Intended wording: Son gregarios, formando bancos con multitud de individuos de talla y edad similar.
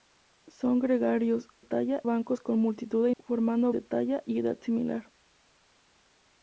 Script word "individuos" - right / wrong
wrong